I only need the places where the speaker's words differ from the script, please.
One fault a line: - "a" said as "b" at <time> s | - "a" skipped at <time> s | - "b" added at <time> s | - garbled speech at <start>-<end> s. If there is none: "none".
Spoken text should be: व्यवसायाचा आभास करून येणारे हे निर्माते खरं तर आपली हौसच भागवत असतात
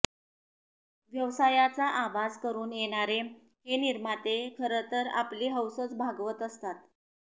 none